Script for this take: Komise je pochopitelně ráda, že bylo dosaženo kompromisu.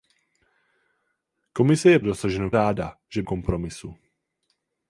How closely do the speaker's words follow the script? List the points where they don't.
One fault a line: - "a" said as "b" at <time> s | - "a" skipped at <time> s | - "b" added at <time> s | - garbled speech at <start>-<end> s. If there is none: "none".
- "pochopitelně" said as "dosaženo" at 2.0 s
- "bylo dosaženo" skipped at 3.2 s